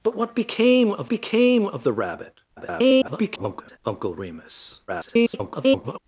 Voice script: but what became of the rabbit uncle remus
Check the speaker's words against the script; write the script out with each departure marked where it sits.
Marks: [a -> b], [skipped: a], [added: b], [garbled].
but what became of [added: became of] the rabbit [garbled] uncle remus [garbled]